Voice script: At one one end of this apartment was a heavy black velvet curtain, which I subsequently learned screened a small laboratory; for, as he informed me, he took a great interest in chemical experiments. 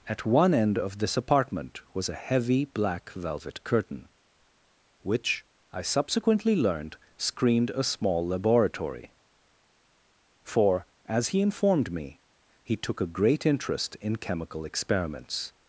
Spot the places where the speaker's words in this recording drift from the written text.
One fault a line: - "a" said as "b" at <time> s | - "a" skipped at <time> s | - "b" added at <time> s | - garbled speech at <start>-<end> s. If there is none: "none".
- "one" skipped at 0.5 s